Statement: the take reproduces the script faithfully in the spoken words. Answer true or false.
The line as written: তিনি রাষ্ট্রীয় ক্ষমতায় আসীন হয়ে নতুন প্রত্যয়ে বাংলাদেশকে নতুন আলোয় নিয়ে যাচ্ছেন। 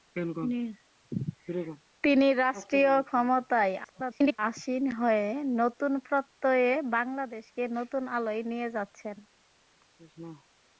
false